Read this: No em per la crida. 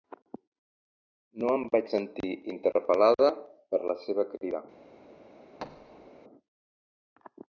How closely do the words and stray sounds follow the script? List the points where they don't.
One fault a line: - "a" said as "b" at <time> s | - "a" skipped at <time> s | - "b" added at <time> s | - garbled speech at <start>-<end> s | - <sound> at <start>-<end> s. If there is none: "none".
- "vaig sentir interpel·lada" added at 1.7 s
- "seva" added at 4.0 s
- thud at 5.6-6.1 s